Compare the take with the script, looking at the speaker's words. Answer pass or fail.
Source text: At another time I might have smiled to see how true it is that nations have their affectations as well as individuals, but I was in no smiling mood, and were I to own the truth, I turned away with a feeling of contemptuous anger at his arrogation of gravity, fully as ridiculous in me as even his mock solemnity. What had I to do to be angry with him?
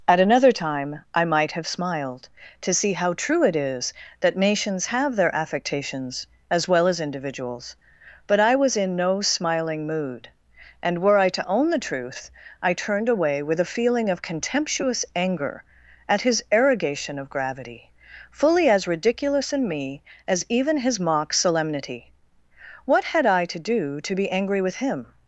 pass